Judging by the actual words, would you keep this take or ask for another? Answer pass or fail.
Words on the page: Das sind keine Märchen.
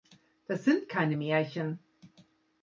pass